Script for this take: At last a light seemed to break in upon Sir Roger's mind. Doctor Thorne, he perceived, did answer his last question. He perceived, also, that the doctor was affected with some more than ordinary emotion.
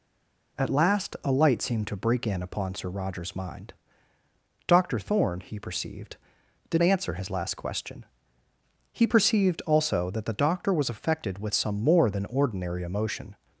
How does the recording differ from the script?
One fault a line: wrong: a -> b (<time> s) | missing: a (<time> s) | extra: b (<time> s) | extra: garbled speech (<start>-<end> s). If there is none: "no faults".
no faults